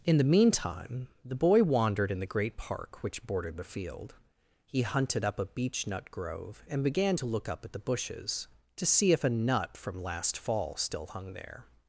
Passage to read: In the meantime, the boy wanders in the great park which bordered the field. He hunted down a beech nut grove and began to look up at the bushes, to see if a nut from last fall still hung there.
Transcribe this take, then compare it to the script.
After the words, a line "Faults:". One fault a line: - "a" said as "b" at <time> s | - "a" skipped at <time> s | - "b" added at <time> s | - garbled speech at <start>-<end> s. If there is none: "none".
In the meantime, the boy wandered in the great park which bordered the field. He hunted up a beech nut grove and began to look up at the bushes, to see if a nut from last fall still hung there.
Faults:
- "wanders" said as "wandered" at 1.6 s
- "down" said as "up" at 5.2 s